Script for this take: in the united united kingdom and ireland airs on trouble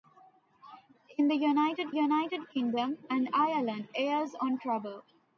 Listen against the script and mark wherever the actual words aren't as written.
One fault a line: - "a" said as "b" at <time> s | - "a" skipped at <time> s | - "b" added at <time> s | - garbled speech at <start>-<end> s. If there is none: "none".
none